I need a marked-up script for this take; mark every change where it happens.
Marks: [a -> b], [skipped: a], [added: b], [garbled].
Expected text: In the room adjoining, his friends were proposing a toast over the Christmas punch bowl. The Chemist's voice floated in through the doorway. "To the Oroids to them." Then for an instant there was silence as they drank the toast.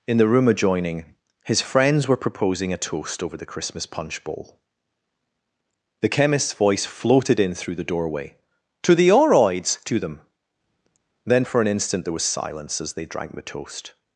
In the room adjoining, his friends were proposing a toast over the Christmas punch bowl. The Chemist's voice floated in through the doorway. "To the Oroids to them." Then for an instant there was silence as they drank the toast.